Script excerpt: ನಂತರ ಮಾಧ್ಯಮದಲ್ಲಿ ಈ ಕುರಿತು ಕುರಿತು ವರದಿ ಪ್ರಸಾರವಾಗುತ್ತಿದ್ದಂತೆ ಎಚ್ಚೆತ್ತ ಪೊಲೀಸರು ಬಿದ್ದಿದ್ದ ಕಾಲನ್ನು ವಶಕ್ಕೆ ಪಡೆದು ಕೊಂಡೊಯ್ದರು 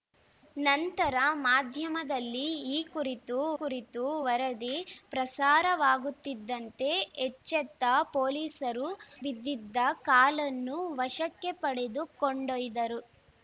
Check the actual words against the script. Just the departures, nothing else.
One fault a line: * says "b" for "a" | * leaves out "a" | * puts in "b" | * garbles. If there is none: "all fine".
all fine